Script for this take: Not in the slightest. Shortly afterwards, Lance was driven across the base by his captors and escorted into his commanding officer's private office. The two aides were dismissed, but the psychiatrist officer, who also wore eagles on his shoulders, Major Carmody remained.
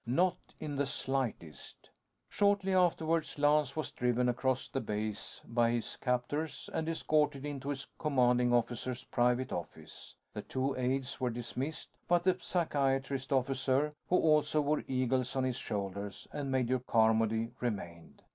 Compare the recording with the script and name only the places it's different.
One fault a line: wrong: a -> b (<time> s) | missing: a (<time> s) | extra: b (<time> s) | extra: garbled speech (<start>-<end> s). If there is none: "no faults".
extra: and (16.3 s)